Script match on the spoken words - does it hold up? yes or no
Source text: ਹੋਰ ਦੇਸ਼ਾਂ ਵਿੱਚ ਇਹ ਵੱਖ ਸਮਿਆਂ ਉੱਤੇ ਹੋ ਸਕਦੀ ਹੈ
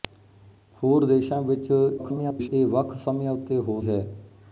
no